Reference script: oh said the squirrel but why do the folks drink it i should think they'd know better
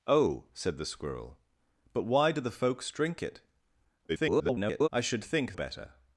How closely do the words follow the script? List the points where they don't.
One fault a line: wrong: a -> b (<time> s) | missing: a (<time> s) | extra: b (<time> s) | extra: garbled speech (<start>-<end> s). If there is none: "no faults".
extra: garbled speech (4.1-4.9 s)
missing: they'd know (5.5 s)